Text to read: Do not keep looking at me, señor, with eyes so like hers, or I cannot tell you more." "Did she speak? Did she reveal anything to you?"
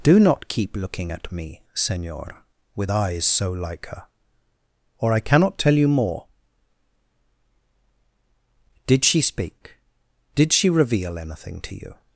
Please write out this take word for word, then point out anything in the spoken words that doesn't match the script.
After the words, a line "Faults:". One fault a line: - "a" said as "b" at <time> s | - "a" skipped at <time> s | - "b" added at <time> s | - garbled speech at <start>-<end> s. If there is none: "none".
Do not keep looking at me, señor, with eyes so like her, or I cannot tell you more." "Did she speak? Did she reveal anything to you?"
Faults:
- "hers" said as "her" at 3.9 s